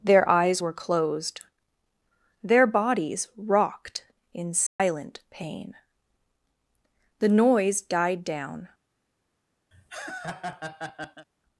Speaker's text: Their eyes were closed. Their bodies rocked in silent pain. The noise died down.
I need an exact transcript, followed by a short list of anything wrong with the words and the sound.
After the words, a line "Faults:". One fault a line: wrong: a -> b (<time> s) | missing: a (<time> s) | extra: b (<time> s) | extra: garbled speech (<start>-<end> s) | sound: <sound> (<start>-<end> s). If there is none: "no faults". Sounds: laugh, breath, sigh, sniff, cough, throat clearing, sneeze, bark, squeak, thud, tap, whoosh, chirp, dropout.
Their eyes were closed. Their bodies rocked in silent pain. The noise died down.
Faults:
sound: dropout (4.7-4.8 s)
sound: laugh (9.7-11.3 s)